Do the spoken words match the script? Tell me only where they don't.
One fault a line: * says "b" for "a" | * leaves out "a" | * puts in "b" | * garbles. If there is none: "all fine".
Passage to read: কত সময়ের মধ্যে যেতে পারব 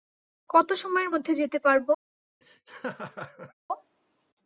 all fine